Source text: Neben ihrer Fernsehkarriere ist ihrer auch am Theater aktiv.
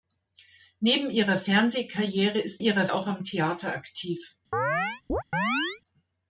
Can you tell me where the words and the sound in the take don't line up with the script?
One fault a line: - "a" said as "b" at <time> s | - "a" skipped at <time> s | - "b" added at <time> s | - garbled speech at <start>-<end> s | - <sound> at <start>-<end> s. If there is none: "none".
- chirp at 4.5-5.8 s